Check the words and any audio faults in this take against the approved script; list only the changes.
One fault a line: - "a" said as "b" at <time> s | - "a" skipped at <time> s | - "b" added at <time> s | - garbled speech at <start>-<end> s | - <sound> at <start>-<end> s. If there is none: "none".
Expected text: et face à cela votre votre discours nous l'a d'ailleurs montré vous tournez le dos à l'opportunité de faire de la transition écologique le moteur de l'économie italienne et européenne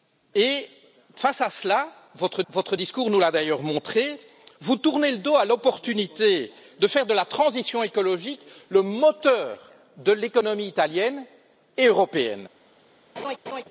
- laugh at 13.2-13.6 s